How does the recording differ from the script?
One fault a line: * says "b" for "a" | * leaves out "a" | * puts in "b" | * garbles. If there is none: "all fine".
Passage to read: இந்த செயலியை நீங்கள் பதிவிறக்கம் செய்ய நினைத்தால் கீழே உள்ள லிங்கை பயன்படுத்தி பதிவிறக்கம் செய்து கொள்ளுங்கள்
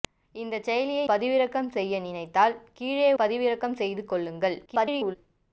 * leaves out "நீங்கள்"
* leaves out "உள்ள லிங்கை பயன்படுத்தி"
* garbles